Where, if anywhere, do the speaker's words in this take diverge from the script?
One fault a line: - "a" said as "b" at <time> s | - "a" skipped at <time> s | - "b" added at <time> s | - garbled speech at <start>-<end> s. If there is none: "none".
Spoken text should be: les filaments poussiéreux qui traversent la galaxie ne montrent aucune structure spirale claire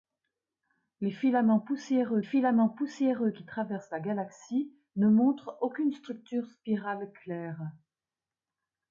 - "filaments poussiéreux" added at 2.2 s